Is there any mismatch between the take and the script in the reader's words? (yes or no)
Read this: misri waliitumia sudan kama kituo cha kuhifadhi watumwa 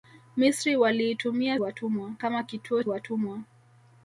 yes